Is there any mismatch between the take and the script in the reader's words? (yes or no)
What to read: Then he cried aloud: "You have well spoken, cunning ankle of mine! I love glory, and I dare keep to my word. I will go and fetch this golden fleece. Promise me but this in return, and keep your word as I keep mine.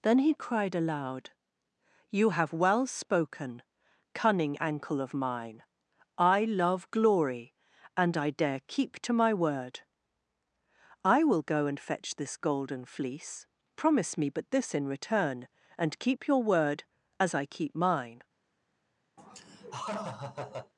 no